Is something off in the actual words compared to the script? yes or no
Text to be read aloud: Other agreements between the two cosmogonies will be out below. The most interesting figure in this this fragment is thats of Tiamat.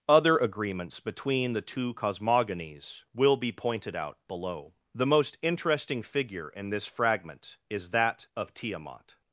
yes